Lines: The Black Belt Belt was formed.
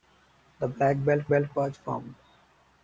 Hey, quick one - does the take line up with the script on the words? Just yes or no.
yes